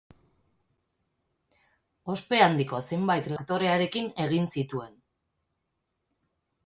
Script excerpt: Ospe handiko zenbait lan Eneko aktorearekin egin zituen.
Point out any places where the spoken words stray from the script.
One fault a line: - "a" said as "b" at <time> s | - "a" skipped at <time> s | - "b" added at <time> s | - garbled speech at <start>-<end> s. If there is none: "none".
- "lan Eneko" skipped at 3.3 s